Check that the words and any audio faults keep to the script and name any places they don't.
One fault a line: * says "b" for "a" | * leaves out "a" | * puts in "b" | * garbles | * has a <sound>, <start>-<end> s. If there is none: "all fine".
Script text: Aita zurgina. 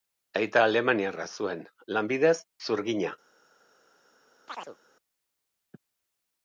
* puts in "alemaniarra zuen lanbidez"
* has a chirp, 4.5-4.8 s